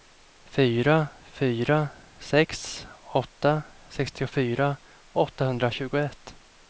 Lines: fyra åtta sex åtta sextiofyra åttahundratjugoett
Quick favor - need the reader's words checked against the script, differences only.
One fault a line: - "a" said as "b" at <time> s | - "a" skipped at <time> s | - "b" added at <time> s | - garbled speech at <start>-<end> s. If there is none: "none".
- "åtta" said as "fyra" at 1.2 s